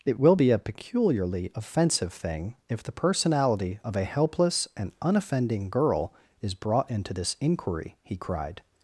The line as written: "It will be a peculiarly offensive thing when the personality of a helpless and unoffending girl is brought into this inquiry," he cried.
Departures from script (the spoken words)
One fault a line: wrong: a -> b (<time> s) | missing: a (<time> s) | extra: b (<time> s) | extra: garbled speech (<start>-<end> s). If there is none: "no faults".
wrong: when -> if (2.7 s)